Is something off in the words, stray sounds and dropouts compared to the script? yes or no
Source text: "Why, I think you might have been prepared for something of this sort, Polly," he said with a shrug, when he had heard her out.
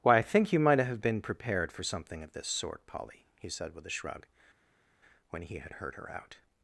no